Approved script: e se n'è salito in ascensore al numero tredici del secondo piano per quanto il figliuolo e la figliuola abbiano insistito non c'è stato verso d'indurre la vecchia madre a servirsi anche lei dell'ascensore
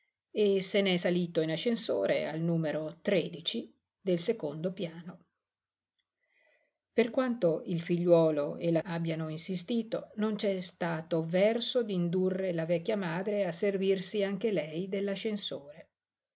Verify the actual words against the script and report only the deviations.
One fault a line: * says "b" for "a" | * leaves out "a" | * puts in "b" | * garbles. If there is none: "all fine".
* leaves out "figliuola"